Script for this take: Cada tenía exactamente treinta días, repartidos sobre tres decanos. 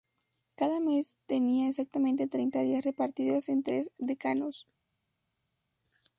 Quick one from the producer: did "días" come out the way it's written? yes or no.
yes